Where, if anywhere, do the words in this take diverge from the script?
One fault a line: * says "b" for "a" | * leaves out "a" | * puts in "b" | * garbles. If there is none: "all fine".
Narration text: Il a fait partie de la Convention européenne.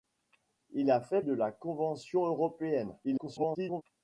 * leaves out "partie"
* garbles